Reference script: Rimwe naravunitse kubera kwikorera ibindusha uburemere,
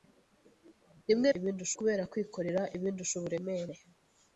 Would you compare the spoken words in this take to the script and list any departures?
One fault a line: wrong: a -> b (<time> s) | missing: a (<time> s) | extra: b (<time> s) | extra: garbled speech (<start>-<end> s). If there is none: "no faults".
wrong: naravunitse -> ibindusha (1.4 s)